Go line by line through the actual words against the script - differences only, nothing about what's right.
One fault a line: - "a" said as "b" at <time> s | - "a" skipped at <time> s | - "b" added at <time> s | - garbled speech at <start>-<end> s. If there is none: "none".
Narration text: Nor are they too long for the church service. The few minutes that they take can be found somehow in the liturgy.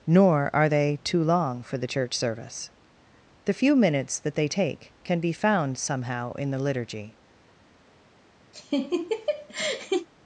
none